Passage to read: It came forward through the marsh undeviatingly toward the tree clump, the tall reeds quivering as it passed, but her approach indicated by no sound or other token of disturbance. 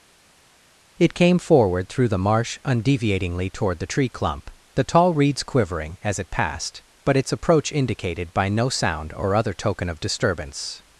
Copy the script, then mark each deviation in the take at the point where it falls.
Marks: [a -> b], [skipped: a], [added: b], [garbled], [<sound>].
It came forward through the marsh undeviatingly toward the tree clump, the tall reeds quivering as it passed, but [her -> its] approach indicated by no sound or other token of disturbance.